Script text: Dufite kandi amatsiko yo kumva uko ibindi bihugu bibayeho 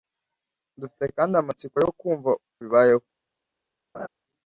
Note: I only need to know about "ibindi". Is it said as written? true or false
false